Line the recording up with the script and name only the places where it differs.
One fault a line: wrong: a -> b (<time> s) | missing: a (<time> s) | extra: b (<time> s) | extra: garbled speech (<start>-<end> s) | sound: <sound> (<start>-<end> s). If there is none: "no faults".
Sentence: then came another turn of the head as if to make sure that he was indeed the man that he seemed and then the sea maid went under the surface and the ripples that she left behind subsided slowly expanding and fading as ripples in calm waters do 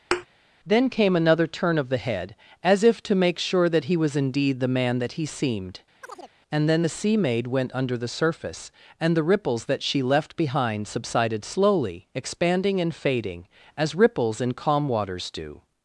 sound: thud (0.1-0.3 s)
sound: chirp (6.0-6.3 s)